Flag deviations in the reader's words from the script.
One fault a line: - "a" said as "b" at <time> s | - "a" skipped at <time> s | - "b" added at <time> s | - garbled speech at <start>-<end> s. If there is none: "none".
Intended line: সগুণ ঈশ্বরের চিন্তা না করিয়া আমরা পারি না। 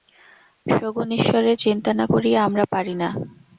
none